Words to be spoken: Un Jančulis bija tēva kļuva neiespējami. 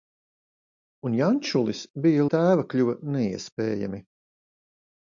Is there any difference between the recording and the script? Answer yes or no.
no